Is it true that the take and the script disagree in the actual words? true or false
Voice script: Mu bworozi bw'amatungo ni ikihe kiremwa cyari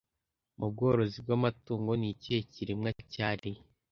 false